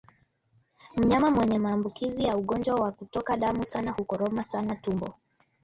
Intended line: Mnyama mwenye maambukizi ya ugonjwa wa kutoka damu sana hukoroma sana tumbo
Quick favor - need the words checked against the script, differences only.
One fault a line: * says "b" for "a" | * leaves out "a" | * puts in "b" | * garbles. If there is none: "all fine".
all fine